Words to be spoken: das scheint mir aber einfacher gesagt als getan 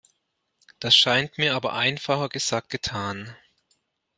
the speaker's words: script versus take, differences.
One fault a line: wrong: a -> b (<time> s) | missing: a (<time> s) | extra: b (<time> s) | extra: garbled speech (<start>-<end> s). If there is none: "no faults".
missing: als (2.7 s)